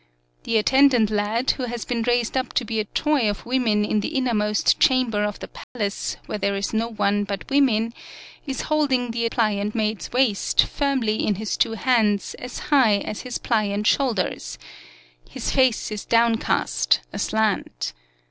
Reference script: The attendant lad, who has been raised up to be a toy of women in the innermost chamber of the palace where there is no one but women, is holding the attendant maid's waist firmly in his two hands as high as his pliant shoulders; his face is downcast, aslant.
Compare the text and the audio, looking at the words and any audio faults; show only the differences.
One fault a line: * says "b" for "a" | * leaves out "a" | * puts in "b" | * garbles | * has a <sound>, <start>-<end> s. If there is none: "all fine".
* has a dropout, 5.6-5.8 s
* says "pliant" for "attendant"